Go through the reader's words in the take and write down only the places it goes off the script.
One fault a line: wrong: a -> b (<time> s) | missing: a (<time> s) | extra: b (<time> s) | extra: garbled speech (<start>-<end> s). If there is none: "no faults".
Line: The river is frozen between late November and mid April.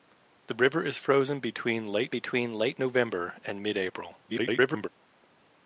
extra: between late (2.1 s)
extra: garbled speech (4.3-4.9 s)